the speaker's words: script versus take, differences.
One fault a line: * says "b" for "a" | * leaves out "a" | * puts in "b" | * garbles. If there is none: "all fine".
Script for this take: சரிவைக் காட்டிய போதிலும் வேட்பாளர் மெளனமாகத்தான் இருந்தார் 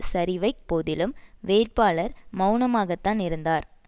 * leaves out "காட்டிய"